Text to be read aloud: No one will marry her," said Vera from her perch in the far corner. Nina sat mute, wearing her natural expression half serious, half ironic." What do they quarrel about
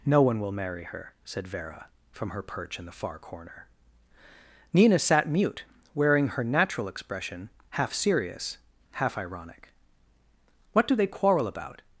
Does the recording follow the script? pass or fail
pass